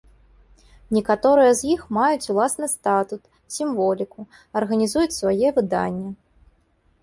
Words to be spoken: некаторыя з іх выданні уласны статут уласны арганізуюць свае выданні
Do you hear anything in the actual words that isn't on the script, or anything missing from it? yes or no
yes